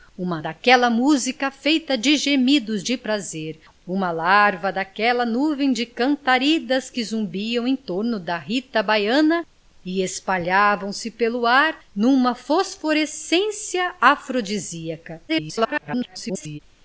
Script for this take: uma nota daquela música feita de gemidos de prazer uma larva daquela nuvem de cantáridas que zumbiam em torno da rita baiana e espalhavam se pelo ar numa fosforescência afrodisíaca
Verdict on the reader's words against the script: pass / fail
fail